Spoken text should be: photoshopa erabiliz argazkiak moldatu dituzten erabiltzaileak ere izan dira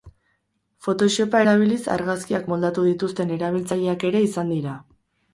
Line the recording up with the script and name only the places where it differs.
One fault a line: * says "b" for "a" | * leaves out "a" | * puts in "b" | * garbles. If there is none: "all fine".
all fine